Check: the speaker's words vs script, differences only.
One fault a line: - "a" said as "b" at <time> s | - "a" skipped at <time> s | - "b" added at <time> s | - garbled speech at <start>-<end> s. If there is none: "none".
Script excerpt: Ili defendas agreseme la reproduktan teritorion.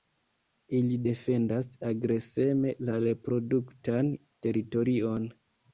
none